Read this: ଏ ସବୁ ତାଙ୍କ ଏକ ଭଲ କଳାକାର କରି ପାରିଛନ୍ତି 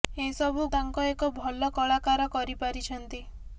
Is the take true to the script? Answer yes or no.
yes